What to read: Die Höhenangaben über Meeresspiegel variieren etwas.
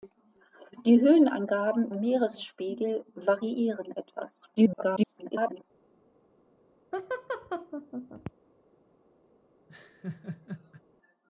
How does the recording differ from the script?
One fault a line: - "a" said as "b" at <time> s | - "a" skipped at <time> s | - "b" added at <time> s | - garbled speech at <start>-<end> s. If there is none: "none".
- "über" skipped at 1.9 s
- garbled speech at 4.6-5.6 s